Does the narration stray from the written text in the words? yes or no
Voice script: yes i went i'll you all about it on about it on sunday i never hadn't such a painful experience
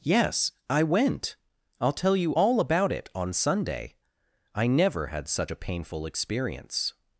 yes